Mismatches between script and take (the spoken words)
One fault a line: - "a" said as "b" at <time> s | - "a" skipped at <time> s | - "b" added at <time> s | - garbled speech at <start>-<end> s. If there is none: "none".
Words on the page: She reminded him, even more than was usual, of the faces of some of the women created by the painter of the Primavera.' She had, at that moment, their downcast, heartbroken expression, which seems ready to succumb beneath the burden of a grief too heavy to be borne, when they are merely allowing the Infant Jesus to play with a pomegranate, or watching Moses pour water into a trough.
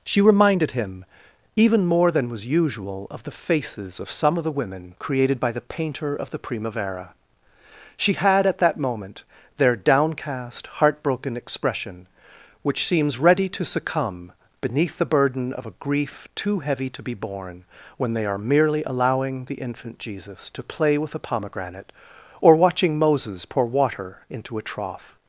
none